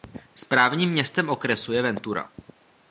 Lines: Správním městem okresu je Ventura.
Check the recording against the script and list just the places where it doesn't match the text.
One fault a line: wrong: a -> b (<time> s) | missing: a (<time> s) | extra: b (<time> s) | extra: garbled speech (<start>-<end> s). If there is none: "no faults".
no faults